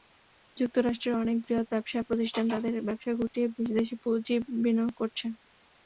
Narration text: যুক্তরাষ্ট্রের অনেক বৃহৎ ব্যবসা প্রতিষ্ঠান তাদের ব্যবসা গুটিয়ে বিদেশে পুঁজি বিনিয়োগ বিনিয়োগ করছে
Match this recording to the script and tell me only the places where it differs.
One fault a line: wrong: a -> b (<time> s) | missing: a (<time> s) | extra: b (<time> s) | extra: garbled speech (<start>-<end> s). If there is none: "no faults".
missing: বিনিয়োগ (4.9 s)